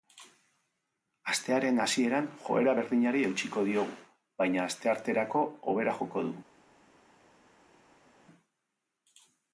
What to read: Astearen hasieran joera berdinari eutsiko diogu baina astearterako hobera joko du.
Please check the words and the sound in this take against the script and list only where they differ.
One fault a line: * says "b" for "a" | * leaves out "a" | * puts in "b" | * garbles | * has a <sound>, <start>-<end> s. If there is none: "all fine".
all fine